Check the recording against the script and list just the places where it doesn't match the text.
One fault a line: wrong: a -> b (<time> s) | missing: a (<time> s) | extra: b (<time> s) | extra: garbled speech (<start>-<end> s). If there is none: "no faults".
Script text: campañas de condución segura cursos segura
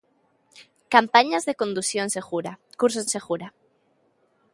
no faults